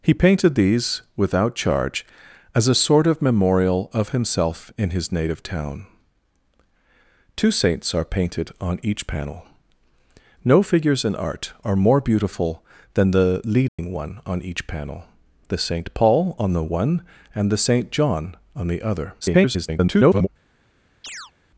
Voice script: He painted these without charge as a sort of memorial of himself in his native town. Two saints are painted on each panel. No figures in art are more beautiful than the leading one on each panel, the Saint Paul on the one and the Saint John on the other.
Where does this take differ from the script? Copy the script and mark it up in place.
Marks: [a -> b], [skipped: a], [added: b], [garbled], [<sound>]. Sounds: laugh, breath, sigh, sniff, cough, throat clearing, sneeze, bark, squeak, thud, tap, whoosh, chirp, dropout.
He painted these without charge as a sort of memorial of himself in his native town. Two saints are painted on each panel. No figures in art are more beautiful than the leading [dropout] one on each panel, the Saint Paul on the one and the Saint John on the other. [garbled] [chirp]